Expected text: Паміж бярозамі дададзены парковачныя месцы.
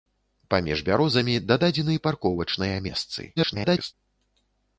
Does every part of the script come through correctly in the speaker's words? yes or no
no